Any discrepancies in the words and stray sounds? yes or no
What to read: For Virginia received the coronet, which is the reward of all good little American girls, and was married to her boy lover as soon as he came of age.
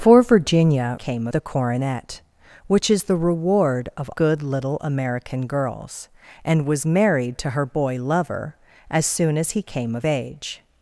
yes